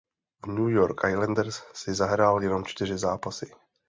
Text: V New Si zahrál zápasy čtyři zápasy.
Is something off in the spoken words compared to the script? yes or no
yes